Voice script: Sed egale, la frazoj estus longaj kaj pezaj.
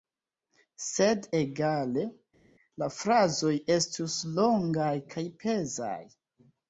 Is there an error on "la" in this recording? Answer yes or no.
no